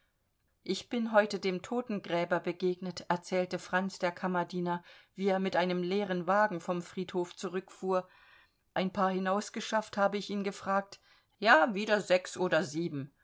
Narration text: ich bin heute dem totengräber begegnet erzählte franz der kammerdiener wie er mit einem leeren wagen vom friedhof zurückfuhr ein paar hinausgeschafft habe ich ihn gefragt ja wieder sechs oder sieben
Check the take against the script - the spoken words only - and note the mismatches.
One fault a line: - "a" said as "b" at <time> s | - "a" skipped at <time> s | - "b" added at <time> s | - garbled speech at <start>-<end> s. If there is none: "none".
none